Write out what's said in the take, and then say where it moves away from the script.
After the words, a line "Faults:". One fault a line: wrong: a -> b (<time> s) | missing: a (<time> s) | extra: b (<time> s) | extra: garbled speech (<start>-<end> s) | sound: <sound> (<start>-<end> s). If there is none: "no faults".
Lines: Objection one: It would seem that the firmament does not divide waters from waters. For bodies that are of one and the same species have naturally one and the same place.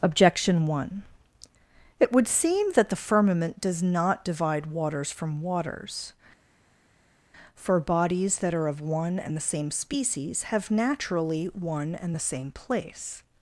Objection one: It would seem that the firmament does not divide waters from waters. For bodies that are of one and the same species have naturally one and the same place.
Faults:
no faults